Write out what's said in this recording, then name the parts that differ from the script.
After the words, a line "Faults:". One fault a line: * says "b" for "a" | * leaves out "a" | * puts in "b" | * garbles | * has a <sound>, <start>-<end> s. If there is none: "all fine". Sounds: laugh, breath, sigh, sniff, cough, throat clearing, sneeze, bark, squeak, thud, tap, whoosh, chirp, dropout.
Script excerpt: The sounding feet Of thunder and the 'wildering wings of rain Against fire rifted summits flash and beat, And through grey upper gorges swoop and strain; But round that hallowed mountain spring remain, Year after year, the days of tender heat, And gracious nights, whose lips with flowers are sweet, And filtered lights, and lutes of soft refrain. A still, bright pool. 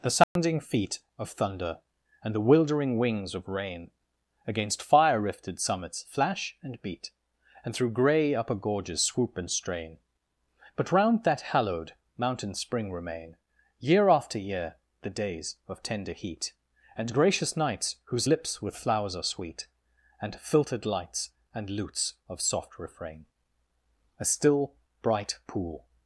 The sounding feet Of thunder and the 'wildering wings of rain Against fire rifted summits flash and beat, And through grey upper gorges swoop and strain; But round that hallowed mountain spring remain, Year after year, the days of tender heat, And gracious nights, whose lips with flowers are sweet, And filtered lights, and lutes of soft refrain. A still, bright pool.
Faults:
* has a dropout, 0.2-0.4 s